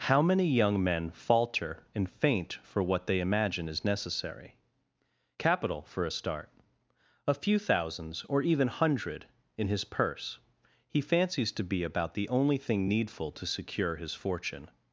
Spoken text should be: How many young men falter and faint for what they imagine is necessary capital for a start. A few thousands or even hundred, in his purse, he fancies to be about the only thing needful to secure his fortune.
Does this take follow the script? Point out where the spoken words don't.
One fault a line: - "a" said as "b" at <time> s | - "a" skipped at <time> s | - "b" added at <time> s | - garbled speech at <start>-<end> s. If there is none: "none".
none